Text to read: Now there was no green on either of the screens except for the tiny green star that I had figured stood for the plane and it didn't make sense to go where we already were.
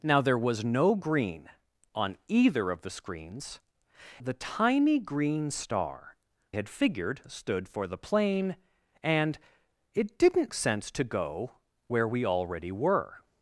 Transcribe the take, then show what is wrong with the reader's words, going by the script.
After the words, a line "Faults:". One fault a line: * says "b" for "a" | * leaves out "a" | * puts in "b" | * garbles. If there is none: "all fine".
Now there was no green on either of the screens the tiny green star had figured stood for the plane and it didn't sense to go where we already were.
Faults:
* leaves out "except for"
* leaves out "that I"
* leaves out "make"